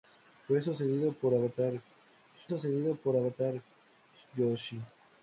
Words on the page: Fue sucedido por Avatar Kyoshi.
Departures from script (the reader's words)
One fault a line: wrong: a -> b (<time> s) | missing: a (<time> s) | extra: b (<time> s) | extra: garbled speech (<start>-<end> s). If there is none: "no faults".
extra: sucedido por Avatar (2.5 s)